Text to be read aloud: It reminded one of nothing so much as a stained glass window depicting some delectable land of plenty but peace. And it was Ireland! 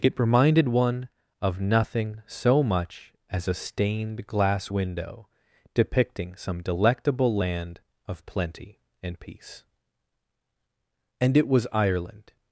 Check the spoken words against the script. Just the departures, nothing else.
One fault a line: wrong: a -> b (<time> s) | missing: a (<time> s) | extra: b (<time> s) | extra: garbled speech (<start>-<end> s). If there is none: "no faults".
wrong: but -> and (9.0 s)